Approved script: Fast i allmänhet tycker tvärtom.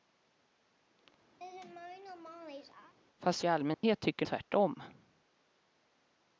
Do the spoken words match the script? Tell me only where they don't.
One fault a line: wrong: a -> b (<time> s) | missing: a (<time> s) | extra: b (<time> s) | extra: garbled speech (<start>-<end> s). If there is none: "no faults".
no faults